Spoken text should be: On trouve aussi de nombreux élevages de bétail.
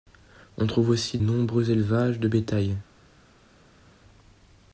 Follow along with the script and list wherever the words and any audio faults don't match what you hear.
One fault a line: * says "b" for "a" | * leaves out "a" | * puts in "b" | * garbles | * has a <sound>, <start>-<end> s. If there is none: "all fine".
* leaves out "de"